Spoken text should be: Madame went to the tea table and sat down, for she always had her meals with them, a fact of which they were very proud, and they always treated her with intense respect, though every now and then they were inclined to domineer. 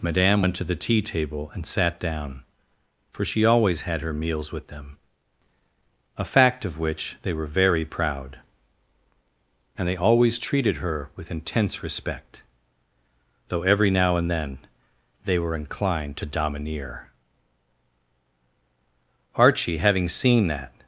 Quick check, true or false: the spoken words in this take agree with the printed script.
false